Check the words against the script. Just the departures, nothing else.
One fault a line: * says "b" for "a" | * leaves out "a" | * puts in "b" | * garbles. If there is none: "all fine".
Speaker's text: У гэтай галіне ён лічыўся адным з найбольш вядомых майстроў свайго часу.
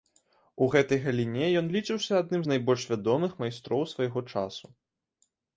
all fine